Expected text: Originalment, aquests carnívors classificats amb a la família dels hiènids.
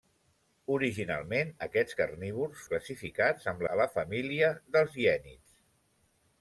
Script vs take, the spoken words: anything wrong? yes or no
no